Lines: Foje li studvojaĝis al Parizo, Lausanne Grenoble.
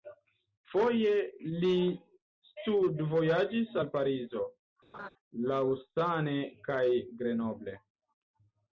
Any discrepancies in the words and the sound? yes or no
yes